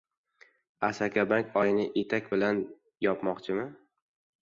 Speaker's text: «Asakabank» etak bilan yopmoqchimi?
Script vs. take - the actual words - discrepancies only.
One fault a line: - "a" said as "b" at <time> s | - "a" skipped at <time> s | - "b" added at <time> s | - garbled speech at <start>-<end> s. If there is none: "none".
- "oyni" added at 1.6 s